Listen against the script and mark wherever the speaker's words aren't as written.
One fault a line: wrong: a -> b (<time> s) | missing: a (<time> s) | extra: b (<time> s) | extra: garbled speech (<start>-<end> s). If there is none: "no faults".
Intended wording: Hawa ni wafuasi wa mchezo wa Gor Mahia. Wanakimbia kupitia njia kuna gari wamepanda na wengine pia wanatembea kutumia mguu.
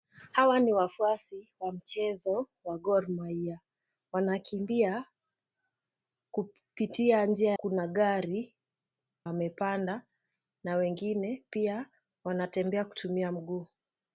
no faults